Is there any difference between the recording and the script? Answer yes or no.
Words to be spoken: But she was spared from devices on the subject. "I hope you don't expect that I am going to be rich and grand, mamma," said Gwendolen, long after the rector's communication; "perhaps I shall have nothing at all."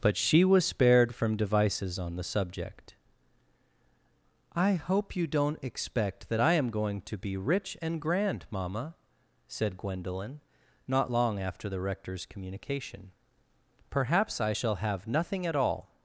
yes